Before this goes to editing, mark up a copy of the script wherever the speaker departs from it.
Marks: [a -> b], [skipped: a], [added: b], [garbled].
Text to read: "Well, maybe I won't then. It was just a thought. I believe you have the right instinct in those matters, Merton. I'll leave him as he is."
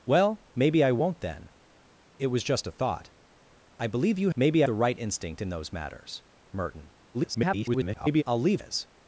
"Well, maybe I won't then. It was just a thought. I believe you [have -> maybe] the right instinct in those matters, Merton. [garbled] I'll leave [skipped: him as he] is."